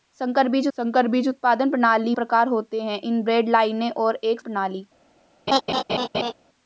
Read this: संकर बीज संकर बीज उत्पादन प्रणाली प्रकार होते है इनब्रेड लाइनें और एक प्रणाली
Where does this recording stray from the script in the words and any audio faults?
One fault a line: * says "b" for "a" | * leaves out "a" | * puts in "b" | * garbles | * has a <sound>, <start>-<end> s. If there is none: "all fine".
* has a laugh, 5.5-6.3 s